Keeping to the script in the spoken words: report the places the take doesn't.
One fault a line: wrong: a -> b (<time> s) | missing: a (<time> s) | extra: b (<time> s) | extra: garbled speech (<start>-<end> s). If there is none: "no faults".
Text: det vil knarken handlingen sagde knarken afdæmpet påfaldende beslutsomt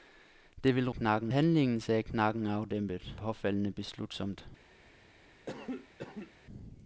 no faults